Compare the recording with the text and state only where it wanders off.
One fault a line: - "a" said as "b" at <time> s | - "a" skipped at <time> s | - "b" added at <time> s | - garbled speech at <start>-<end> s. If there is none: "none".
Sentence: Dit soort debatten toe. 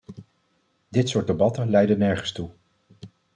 - "leiden nergens" added at 1.7 s